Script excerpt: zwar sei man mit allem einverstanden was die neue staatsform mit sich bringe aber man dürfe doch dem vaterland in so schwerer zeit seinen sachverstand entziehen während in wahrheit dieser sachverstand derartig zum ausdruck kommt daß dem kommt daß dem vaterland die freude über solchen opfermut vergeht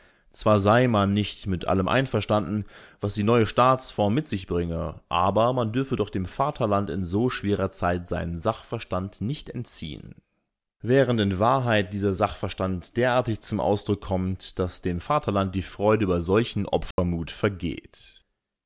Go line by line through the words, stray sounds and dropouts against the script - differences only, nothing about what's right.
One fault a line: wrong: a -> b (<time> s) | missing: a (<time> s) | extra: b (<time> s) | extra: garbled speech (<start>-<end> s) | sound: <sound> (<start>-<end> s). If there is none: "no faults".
extra: nicht (1.1 s)
extra: nicht (9.2 s)
missing: kommt daß dem (15.0 s)
sound: dropout (16.9-17.0 s)